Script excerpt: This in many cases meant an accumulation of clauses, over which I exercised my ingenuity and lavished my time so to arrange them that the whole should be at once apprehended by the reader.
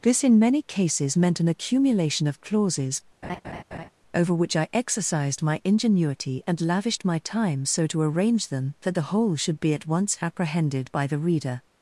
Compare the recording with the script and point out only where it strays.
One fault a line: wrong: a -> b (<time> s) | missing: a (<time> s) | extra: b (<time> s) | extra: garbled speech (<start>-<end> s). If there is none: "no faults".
no faults